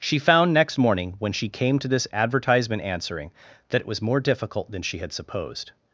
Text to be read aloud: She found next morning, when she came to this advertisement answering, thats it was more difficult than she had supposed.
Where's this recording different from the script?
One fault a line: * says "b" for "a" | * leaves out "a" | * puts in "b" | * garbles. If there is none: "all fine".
* says "that" for "thats"